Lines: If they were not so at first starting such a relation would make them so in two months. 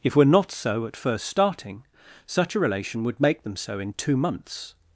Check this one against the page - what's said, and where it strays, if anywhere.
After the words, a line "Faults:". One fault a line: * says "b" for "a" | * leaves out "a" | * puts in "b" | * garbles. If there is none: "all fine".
If were not so at first starting such a relation would make them so in two months.
Faults:
* leaves out "they"